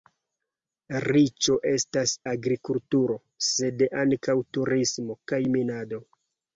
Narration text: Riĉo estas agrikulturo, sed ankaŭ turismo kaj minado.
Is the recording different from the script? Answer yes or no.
no